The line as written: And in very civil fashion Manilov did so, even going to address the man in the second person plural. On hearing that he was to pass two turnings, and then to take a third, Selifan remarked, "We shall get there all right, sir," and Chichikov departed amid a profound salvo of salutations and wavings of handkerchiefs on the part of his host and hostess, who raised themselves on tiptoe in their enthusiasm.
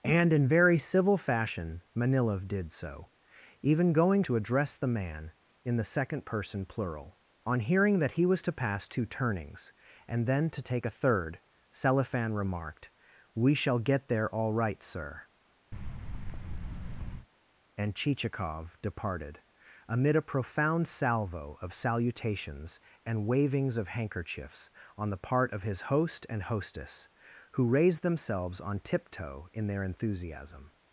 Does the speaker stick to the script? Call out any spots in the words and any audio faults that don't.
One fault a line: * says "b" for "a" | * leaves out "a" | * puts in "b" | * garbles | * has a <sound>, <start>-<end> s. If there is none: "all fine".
* has a thud, 15.7-17.3 s